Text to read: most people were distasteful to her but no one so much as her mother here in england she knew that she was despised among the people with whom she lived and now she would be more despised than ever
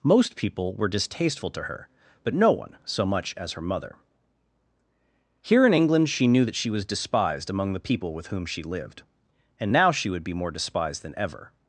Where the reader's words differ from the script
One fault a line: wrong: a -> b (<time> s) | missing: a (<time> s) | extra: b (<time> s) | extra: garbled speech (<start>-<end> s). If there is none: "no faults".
no faults